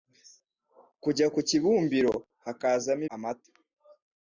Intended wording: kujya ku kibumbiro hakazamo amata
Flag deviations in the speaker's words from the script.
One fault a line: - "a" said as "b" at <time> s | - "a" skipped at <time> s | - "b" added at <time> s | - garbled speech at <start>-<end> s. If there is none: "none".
none